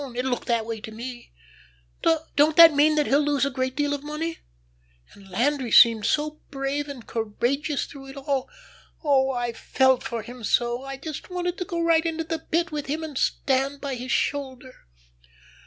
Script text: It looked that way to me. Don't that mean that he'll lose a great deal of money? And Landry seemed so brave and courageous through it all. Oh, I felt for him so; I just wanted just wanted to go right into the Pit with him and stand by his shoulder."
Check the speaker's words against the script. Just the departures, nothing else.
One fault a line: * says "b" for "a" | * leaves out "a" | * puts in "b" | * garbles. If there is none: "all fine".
* leaves out "just wanted"